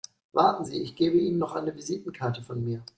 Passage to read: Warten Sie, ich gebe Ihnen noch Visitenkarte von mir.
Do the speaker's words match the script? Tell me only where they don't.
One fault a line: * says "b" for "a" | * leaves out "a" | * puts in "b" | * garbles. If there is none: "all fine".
* puts in "eine"